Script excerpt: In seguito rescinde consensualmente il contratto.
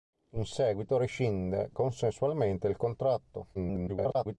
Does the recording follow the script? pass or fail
fail